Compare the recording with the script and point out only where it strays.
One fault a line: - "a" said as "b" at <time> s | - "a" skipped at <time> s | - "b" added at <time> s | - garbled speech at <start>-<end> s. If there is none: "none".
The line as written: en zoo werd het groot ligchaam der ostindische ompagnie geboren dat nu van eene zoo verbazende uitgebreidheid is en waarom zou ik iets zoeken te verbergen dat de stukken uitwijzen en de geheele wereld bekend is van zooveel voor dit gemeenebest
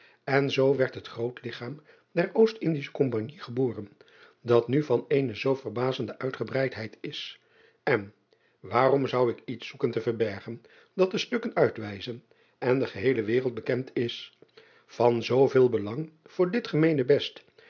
- "belang" added at 15.7 s